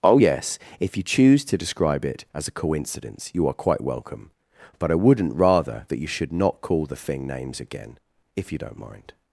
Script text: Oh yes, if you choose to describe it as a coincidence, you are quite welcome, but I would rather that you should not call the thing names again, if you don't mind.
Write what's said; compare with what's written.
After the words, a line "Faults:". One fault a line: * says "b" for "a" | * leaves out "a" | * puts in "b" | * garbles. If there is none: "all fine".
Oh yes, if you choose to describe it as a coincidence, you are quite welcome, but I wouldn't rather that you should not call the thing names again, if you don't mind.
Faults:
* says "wouldn't" for "would"